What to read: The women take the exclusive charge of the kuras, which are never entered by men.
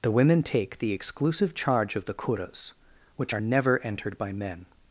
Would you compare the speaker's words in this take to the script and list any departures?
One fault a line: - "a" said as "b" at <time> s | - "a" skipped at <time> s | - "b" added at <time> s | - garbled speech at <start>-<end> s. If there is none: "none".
none